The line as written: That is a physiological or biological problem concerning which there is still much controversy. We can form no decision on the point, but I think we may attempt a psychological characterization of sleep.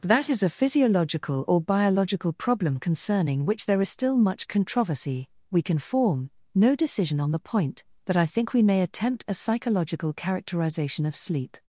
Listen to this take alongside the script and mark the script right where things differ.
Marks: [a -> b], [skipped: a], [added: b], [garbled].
That is a physiological or biological problem concerning which there is still much controversy. We can form no decision on the point, but I think we may attempt a psychological characterization of sleep.